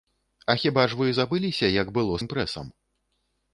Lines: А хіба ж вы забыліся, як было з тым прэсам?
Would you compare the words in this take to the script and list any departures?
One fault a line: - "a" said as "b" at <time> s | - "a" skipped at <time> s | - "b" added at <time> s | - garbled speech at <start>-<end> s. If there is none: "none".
- "з" skipped at 2.1 s